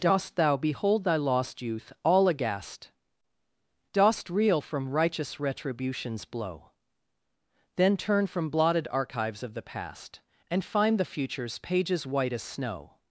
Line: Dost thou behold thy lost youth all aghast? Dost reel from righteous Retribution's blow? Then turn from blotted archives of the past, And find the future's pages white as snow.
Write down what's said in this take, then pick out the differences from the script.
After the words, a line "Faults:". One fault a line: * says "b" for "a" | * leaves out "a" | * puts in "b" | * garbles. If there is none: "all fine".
Dost thou behold thy lost youth all aghast? Dost reel from righteous Retribution's blow? Then turn from blotted archives of the past, And find the future's pages white as snow.
Faults:
all fine